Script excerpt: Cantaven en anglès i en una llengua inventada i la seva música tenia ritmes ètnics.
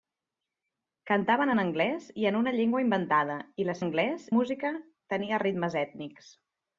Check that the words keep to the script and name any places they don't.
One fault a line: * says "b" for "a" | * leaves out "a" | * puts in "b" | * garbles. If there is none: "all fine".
* says "anglès" for "seva"